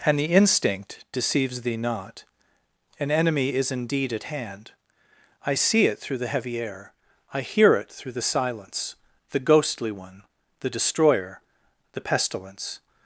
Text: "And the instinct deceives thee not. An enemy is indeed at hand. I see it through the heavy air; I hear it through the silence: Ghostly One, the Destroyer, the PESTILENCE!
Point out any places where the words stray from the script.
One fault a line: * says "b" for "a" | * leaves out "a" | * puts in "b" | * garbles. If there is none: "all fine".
* puts in "the"